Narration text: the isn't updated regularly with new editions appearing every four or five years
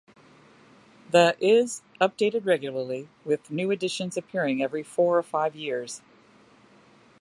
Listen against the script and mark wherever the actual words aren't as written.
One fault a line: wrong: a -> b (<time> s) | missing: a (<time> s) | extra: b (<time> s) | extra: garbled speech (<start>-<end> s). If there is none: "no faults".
wrong: isn't -> is (1.4 s)